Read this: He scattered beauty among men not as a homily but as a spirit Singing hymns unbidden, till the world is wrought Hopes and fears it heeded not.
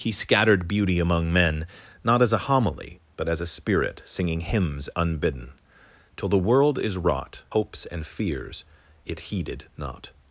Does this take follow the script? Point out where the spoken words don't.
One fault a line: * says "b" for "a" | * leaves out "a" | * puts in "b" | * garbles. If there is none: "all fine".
all fine